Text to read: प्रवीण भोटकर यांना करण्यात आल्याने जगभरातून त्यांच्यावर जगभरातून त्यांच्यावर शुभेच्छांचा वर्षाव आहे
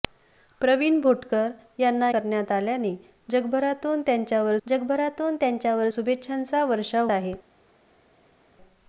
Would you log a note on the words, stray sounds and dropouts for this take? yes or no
no